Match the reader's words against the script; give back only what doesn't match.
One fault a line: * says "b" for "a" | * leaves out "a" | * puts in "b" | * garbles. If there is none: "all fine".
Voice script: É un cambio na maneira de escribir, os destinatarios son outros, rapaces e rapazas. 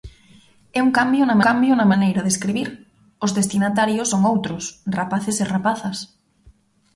* puts in "cambio na"